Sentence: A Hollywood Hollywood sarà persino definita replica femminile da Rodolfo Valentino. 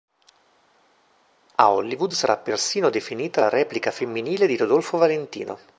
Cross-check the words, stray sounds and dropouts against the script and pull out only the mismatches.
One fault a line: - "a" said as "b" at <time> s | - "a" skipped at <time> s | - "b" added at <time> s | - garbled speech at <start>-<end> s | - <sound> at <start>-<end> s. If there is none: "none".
- "Hollywood" skipped at 2.1 s
- "la" added at 3.4 s
- "da" said as "di" at 4.4 s